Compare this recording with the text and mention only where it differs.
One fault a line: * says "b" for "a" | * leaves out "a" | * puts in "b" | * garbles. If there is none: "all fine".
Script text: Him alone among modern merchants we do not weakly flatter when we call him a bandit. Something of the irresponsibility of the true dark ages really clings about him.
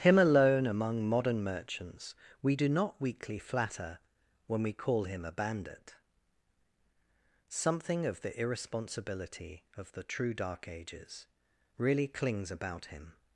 all fine